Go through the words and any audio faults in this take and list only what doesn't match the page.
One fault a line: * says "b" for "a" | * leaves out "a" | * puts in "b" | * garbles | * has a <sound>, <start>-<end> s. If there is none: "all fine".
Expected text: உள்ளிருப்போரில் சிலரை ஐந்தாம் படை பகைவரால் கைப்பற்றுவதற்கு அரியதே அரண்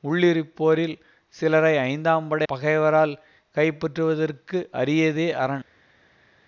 all fine